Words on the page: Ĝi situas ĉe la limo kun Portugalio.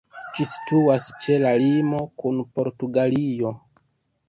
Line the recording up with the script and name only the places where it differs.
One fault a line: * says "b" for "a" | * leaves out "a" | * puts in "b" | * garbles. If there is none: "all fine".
all fine